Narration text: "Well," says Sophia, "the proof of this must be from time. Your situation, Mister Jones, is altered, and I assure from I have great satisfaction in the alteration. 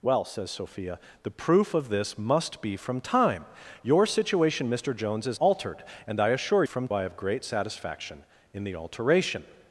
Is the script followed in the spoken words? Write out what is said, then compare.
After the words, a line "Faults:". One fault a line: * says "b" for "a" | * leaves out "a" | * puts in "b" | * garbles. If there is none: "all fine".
"Well," says Sophia, "the proof of this must be from time. Your situation, Mister Jones, is altered, and I assure from I have great satisfaction in the alteration.
Faults:
all fine